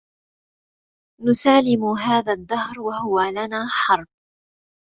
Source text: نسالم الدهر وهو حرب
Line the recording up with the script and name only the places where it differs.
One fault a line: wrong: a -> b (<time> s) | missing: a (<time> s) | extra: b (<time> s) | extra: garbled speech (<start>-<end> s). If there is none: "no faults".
extra: هذا (1.9 s)
extra: لنا (3.2 s)